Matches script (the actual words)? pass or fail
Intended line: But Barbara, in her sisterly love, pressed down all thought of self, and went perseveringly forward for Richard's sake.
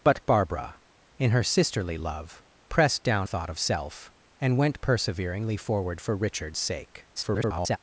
fail